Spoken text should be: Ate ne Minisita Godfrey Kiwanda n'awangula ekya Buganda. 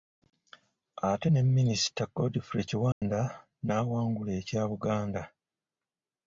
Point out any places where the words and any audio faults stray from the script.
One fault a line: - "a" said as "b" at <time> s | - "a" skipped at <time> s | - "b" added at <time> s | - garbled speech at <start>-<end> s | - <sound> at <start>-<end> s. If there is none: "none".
- dropout at 2.9-3.0 s